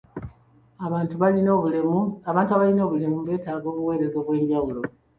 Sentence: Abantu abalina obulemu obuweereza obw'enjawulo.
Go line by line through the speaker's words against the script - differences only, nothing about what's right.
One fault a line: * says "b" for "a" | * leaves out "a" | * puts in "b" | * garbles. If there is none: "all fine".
* puts in "beetaaga"